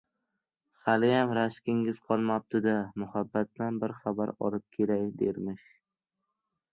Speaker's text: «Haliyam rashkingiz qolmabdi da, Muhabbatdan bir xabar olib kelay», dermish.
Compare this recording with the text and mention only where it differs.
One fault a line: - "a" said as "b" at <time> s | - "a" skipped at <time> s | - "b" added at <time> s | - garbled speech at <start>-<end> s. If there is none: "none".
none